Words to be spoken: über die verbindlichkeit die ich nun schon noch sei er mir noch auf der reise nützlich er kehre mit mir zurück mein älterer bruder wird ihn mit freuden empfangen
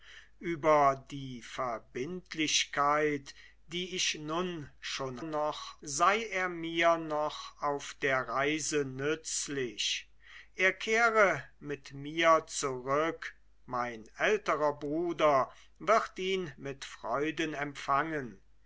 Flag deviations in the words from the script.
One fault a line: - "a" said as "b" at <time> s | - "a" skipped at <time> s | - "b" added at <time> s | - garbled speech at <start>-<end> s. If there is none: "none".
none